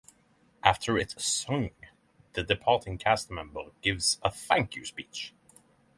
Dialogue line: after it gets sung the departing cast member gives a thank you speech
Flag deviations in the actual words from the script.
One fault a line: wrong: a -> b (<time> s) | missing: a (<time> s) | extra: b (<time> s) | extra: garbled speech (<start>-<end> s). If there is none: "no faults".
missing: gets (1.1 s)